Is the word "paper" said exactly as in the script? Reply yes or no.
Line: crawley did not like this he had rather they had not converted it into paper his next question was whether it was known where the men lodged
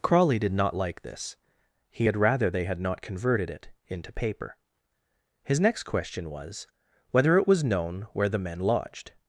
yes